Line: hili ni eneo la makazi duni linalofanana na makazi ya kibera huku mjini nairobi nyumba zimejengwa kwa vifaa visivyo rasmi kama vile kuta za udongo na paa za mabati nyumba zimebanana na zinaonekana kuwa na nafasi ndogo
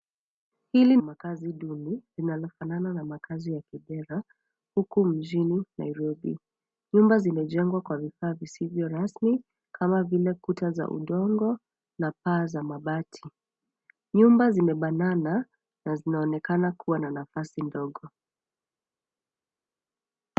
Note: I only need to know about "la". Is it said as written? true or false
false